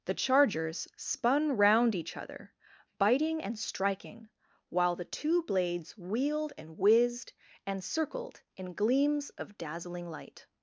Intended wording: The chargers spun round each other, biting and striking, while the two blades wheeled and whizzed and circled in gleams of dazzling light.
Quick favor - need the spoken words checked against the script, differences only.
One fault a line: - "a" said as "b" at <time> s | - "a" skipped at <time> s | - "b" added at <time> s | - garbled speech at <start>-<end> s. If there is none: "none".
none